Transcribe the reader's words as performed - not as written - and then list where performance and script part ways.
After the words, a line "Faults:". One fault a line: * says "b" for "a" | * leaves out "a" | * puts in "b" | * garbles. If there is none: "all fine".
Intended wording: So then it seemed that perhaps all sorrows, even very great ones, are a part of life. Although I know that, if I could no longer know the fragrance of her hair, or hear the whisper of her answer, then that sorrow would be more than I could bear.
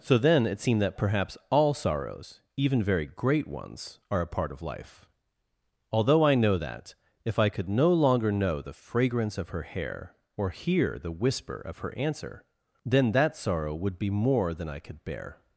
So then it seemed that perhaps all sorrows, even very great ones, are a part of life. Although I know that, if I could no longer know the fragrance of her hair, or hear the whisper of her answer, then that sorrow would be more than I could bear.
Faults:
all fine